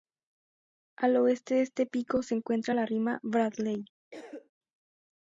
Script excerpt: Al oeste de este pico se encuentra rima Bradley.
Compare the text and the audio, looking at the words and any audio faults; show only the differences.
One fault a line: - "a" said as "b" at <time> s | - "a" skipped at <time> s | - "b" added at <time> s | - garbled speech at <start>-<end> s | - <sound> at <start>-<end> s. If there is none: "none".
- "la" added at 2.7 s
- cough at 4.1-4.5 s